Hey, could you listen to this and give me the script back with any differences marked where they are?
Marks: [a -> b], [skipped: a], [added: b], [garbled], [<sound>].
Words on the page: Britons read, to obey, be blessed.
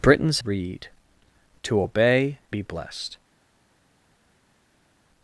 Britons read, to obey, be blessed.